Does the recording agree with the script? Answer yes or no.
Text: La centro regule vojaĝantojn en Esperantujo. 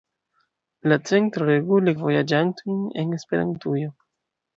yes